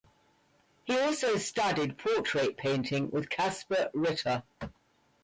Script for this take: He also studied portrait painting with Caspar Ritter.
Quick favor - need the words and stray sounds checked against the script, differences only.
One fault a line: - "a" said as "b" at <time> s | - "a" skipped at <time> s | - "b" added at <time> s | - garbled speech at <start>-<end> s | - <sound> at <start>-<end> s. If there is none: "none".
none